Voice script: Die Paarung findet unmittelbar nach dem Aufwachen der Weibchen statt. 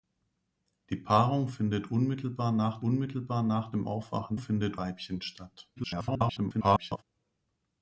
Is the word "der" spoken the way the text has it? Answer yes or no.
no